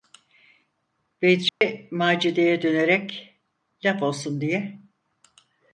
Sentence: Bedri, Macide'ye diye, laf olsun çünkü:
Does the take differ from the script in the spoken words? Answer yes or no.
yes